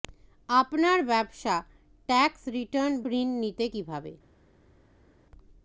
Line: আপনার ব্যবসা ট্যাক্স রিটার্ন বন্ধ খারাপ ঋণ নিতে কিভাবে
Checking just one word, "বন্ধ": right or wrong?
wrong